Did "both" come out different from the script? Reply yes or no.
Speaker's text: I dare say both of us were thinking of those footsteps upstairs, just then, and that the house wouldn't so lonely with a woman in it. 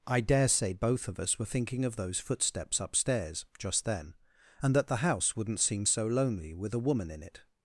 no